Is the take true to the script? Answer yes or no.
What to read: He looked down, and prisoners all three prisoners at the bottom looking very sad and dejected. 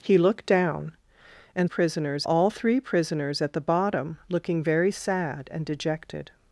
yes